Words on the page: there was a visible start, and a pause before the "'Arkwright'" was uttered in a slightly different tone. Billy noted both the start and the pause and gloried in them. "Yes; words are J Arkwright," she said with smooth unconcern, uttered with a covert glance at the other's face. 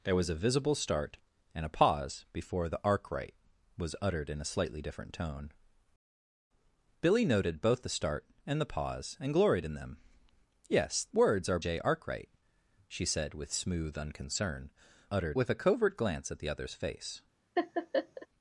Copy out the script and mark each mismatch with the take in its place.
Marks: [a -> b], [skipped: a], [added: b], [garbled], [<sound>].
there was a visible start, and a pause before the "'Arkwright'" was uttered in a slightly different tone. Billy noted both the start and the pause and gloried in them. "Yes; words are J Arkwright," she said with smooth unconcern, uttered with a covert glance at the other's face. [laugh]